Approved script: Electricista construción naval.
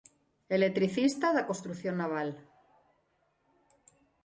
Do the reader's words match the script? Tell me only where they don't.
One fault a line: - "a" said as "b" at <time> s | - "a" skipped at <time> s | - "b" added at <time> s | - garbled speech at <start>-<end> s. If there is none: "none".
- "da" added at 1.4 s